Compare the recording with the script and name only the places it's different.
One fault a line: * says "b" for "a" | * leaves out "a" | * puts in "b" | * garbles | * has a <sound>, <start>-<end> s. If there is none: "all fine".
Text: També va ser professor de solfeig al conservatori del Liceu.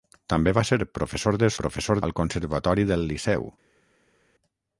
* says "professor" for "solfeig"